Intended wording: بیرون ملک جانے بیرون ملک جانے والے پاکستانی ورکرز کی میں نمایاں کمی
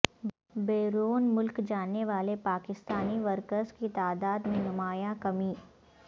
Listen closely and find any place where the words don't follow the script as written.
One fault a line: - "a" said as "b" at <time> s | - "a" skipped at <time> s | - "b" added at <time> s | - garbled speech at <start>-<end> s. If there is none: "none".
- "بیرون ملک جانے" skipped at 2.0 s
- "تعداد" added at 4.0 s